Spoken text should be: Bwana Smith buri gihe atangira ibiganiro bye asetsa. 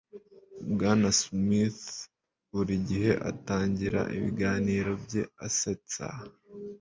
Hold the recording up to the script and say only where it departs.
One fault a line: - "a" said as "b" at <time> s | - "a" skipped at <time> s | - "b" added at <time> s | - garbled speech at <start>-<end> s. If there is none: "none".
none